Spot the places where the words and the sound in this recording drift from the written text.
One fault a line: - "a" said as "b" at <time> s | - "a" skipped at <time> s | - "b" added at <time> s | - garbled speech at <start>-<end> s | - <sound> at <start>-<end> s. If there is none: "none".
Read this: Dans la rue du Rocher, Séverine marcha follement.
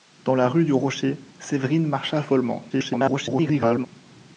- garbled speech at 2.7-3.9 s